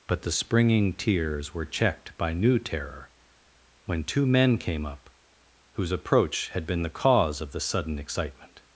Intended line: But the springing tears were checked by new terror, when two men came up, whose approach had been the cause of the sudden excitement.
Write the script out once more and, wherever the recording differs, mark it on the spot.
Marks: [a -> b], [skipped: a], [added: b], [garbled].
But the springing tears were checked by new terror, when two men came up, whose approach had been the cause of the sudden excitement.